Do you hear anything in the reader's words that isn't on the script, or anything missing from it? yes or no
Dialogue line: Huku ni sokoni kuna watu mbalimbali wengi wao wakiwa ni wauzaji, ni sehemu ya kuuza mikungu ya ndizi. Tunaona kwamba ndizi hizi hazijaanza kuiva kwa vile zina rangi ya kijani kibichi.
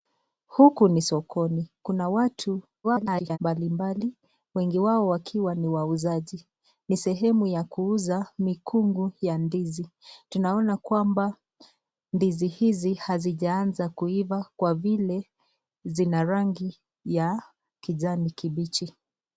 yes